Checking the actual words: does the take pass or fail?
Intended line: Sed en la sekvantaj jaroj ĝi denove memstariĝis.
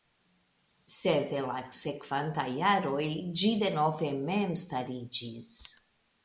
pass